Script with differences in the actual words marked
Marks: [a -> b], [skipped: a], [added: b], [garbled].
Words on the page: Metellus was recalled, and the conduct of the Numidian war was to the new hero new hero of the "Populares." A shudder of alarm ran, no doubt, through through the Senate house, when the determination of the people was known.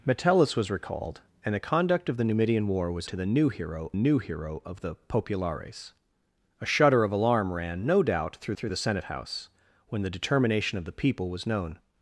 Metellus was recalled, and the conduct of the Numidian war was to the new hero new hero of the "Populares." A shudder of alarm ran, no doubt, through through the Senate house, when the determination of the people was known.